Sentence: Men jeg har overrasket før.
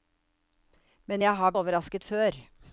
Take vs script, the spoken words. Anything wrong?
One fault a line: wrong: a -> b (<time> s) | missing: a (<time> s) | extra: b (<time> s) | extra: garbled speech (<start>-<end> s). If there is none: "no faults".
no faults